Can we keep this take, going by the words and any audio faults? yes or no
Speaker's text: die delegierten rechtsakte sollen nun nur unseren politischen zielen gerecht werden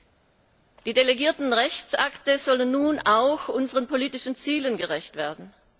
no